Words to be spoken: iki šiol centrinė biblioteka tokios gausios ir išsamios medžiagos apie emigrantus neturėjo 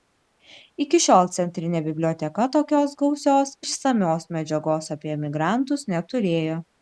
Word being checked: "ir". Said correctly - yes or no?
no